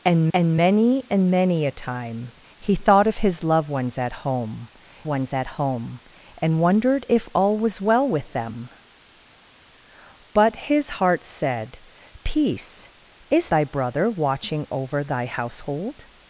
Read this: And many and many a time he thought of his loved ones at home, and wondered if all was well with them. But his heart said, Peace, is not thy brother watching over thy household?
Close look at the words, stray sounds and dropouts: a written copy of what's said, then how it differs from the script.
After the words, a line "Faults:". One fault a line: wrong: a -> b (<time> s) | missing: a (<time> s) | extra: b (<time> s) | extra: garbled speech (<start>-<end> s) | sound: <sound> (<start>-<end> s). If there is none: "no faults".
And and many and many a time he thought of his loved ones at home ones at home, and wondered if all was well with them. But his heart said, Peace, is thy brother watching over thy household?
Faults:
extra: and (0.3 s)
extra: ones at home (5.1 s)
missing: not (13.5 s)